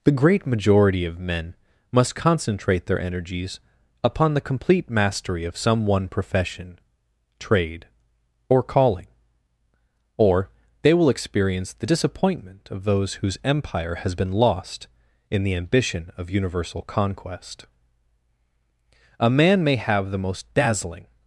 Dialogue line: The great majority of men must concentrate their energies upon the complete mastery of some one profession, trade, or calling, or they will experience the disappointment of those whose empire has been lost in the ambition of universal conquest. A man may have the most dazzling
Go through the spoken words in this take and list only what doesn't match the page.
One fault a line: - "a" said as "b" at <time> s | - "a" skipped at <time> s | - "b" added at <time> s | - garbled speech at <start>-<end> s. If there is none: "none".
none